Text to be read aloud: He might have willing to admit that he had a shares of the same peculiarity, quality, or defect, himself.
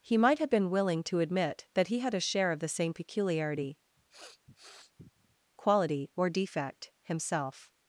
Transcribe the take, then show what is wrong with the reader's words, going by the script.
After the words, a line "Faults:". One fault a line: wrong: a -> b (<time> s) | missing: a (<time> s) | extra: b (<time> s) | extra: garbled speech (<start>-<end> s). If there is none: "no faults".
He might have been willing to admit that he had a share of the same peculiarity, quality, or defect, himself.
Faults:
extra: been (0.5 s)
wrong: shares -> share (2.2 s)